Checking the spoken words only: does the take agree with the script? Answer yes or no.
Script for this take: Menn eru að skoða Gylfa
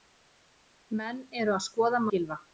yes